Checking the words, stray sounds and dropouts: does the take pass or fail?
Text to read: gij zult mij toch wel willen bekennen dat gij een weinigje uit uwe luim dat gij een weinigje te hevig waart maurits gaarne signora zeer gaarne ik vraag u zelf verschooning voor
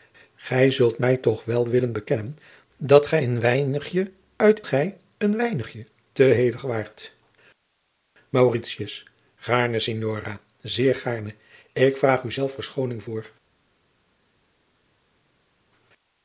fail